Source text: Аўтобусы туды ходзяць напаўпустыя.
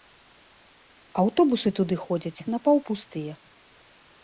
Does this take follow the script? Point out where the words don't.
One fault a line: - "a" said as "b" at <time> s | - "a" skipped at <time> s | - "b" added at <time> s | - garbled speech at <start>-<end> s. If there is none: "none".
none